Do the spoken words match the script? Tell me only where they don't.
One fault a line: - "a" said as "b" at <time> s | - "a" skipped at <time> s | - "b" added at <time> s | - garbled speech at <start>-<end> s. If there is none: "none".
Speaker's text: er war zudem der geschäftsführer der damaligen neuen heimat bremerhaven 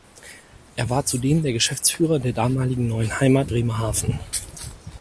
none